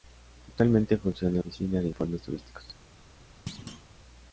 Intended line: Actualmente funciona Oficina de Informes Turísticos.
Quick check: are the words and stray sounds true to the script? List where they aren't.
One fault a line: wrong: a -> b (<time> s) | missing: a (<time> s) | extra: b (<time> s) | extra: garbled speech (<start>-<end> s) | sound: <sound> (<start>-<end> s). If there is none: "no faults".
sound: thud (3.5-3.9 s)